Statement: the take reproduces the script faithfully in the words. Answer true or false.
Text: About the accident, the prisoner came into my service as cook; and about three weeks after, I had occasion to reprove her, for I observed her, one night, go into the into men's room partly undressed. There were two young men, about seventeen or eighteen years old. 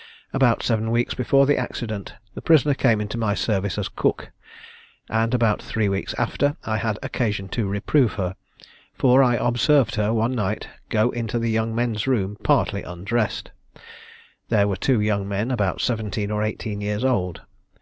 false